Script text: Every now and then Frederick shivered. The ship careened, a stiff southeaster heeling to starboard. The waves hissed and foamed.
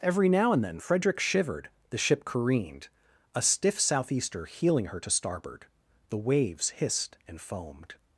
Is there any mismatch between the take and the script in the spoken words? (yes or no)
yes